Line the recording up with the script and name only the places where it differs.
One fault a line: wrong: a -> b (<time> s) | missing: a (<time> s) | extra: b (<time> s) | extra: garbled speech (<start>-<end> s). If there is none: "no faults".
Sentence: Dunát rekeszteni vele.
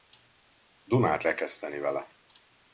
no faults